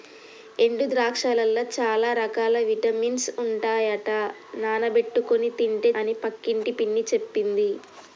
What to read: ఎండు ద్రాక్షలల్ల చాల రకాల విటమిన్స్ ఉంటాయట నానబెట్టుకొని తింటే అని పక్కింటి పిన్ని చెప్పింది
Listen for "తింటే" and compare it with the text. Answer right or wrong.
right